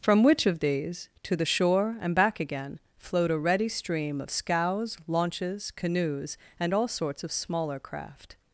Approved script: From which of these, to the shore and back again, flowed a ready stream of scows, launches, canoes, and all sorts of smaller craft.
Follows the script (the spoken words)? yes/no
yes